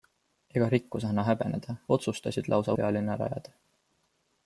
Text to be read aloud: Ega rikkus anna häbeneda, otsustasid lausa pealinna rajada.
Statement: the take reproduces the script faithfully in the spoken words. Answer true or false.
true